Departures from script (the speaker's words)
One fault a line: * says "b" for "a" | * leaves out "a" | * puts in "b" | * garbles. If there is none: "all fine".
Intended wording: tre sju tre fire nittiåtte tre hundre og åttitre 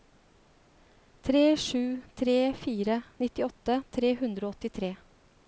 all fine